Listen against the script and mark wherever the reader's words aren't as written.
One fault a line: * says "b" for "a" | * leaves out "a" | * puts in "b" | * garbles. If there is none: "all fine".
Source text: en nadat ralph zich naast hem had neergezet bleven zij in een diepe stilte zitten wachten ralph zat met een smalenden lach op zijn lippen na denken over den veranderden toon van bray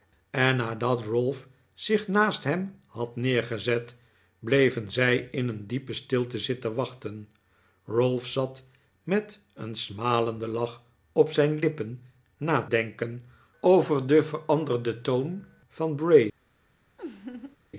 all fine